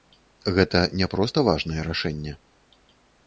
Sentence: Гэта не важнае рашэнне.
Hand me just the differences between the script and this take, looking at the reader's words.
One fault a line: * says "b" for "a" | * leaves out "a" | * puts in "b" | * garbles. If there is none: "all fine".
* puts in "проста"